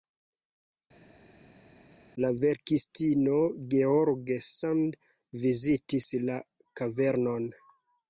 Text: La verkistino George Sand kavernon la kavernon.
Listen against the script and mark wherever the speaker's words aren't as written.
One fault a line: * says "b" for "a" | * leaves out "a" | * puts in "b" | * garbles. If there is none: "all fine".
* says "vizitis" for "kavernon"